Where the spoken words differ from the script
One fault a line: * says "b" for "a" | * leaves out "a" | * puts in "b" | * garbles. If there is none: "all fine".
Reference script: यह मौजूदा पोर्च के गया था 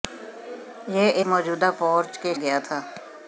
all fine